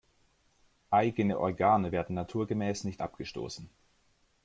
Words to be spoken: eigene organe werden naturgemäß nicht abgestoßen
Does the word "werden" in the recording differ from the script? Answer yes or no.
no